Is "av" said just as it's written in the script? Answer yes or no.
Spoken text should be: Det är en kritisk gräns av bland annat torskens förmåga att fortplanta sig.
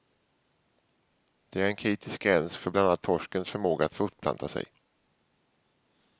no